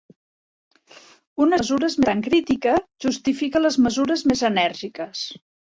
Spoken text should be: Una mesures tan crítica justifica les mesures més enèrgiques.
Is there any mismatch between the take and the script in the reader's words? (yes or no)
no